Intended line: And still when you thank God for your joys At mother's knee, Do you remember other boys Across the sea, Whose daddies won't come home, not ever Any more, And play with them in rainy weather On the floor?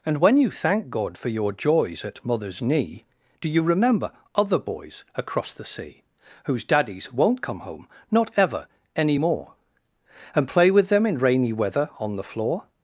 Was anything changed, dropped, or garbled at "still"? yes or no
yes